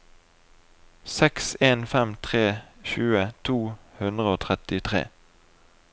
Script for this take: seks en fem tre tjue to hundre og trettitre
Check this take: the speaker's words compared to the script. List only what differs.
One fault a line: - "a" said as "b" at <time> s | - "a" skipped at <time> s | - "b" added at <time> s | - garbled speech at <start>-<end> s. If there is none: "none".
none